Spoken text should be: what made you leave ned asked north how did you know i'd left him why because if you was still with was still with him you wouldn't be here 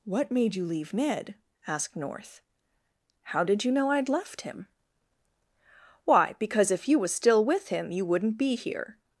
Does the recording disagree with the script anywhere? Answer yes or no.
yes